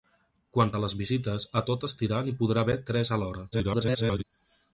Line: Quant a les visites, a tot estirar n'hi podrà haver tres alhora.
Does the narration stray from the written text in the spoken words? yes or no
yes